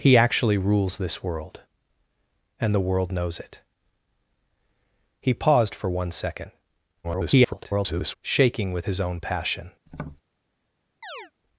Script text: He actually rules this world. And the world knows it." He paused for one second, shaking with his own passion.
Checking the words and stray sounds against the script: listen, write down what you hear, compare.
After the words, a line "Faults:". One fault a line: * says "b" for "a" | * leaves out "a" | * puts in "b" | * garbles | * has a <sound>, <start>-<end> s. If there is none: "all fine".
He actually rules this world. And the world knows it." He paused for one second, [garbled] shaking with his own passion.
Faults:
* garbles
* has a tap, 9.9-10.2 s
* has a chirp, 11.0-11.3 s